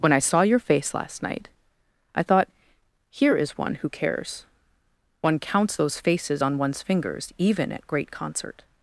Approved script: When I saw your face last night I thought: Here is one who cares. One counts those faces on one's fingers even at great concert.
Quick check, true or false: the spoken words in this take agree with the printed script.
true